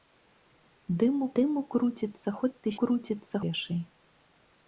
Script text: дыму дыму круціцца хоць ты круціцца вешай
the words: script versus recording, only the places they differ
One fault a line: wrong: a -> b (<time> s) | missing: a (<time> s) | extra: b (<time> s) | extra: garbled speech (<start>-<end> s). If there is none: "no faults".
no faults